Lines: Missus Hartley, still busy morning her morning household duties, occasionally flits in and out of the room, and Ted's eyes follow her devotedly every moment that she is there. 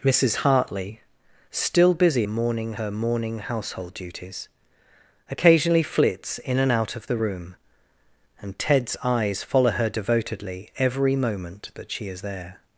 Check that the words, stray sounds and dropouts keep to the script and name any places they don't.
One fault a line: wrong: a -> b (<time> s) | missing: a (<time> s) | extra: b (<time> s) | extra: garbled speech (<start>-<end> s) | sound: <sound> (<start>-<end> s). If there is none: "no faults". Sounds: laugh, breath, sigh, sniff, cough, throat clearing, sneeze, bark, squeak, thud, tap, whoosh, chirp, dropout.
no faults